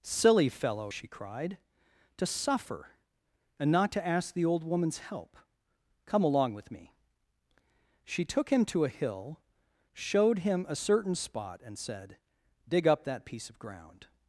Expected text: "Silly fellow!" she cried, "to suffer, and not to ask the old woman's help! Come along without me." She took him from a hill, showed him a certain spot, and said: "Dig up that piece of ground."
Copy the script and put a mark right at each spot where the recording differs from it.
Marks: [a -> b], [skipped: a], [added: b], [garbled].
"Silly fellow!" she cried, "to suffer, and not to ask the old woman's help! Come along [without -> with] me." She took him [from -> to] a hill, showed him a certain spot, and said: "Dig up that piece of ground."